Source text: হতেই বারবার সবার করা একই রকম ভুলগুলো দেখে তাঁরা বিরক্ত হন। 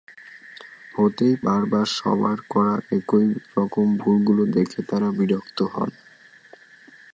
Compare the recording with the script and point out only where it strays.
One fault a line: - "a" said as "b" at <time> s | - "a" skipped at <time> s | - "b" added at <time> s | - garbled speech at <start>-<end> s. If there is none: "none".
none